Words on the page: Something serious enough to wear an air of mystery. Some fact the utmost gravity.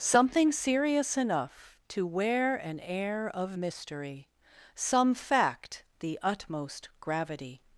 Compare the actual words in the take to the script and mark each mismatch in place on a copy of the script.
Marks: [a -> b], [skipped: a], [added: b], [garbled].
Something serious enough to wear an air of mystery. Some fact the utmost gravity.